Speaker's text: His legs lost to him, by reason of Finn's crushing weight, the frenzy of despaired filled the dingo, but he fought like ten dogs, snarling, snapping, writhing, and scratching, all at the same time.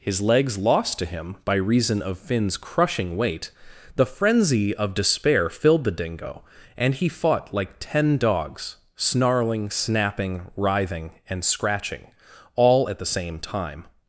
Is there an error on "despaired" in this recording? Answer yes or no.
yes